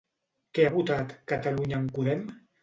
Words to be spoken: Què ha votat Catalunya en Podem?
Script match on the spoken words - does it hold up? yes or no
yes